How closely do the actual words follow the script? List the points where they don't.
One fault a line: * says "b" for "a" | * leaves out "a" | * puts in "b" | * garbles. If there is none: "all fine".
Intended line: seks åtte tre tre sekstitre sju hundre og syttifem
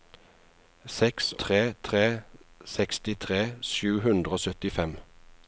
* leaves out "åtte"